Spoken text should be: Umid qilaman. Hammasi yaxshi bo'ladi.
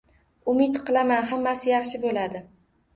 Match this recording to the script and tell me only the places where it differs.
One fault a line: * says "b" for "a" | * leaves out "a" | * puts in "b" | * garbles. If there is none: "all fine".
all fine